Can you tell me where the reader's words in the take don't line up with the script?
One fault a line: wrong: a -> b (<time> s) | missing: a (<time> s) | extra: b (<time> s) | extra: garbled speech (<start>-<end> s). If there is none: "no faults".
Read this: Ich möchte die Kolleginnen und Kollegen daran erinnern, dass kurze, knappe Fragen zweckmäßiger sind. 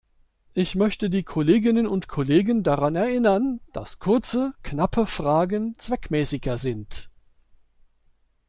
no faults